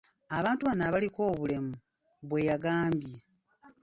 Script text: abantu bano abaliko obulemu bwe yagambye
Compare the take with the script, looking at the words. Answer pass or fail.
pass